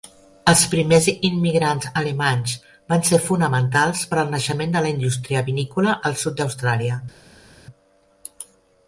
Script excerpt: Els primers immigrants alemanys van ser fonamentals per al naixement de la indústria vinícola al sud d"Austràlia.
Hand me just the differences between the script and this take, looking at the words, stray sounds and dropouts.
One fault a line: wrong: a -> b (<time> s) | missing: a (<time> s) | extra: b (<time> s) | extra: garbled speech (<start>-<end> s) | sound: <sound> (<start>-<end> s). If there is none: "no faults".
no faults